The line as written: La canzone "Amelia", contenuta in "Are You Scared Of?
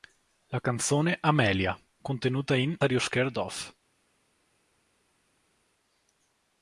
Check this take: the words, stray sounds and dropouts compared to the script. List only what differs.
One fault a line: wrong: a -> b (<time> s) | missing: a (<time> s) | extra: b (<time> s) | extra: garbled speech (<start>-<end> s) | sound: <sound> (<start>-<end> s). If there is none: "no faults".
no faults